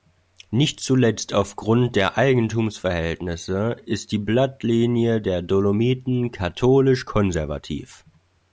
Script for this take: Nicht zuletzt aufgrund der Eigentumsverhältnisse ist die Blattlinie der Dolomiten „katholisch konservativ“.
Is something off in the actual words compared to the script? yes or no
no